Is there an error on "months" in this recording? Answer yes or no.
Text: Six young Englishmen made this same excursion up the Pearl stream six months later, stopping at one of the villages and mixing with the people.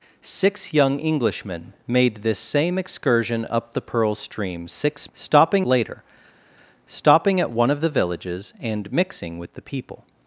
yes